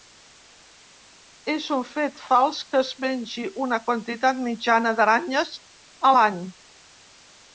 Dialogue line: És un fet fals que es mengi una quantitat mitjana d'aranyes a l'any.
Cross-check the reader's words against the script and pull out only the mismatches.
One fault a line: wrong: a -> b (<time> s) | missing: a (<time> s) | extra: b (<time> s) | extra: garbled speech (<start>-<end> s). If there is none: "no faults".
no faults